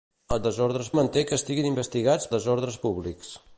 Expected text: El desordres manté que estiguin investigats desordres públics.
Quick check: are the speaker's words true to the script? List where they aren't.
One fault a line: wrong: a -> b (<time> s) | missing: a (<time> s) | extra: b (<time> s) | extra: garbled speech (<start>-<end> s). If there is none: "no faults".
no faults